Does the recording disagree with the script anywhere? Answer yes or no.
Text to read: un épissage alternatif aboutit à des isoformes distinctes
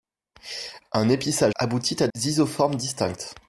yes